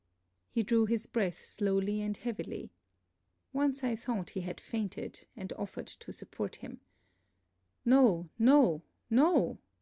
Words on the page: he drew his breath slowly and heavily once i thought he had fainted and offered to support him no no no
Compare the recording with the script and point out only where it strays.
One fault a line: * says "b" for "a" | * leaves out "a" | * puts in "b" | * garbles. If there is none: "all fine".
all fine